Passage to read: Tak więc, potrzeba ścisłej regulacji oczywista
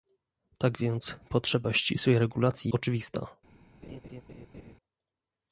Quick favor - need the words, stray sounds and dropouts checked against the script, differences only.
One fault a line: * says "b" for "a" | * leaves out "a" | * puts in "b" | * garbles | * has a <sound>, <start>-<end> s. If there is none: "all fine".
* has a laugh, 3.8-4.7 s